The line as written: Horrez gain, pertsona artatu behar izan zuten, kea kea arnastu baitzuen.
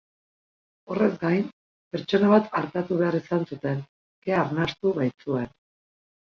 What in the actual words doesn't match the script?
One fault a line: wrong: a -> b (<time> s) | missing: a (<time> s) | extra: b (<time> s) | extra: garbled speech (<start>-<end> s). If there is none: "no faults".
extra: bat (2.3 s)
missing: kea (4.4 s)